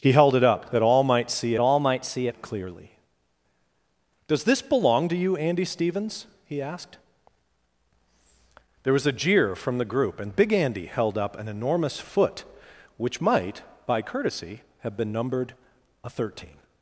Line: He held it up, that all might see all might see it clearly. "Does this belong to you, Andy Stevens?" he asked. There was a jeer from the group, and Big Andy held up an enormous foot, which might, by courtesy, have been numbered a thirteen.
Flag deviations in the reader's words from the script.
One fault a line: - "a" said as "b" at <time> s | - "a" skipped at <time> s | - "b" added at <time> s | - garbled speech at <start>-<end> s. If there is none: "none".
none